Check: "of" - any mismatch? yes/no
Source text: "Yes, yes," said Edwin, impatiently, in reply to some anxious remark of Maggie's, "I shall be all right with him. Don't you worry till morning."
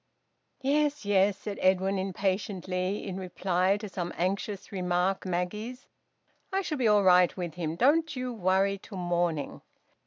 yes